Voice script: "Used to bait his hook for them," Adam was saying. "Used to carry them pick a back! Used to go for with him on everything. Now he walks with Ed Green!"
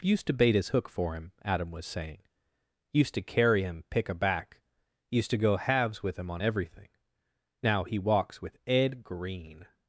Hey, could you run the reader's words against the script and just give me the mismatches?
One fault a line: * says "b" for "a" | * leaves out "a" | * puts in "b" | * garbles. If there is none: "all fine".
* says "him" for "them"
* says "him" for "them"
* says "halves" for "for"